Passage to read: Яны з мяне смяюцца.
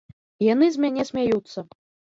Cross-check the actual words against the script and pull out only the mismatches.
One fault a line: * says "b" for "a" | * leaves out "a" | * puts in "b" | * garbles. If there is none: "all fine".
all fine